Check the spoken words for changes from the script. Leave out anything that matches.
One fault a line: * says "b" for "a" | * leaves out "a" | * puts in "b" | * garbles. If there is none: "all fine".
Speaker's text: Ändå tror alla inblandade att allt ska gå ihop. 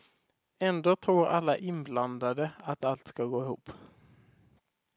all fine